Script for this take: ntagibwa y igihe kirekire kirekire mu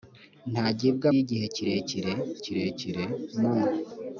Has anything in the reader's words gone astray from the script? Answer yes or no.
no